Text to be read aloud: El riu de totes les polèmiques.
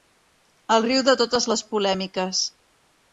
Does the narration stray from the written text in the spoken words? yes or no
no